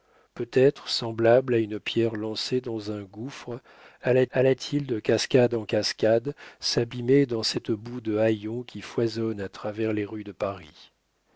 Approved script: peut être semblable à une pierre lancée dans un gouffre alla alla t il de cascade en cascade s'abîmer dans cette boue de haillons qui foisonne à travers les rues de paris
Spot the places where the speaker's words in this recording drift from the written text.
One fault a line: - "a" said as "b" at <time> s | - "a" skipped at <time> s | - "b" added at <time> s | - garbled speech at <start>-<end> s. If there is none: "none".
none